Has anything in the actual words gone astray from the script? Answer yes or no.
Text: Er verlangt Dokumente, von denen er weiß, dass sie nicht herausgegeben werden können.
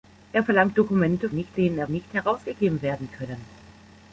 yes